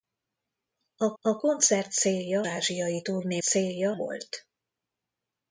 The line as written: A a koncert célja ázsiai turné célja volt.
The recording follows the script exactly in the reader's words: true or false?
true